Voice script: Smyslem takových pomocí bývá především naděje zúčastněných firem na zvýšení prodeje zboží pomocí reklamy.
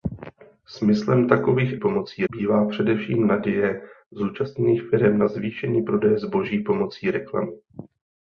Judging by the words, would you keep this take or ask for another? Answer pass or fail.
pass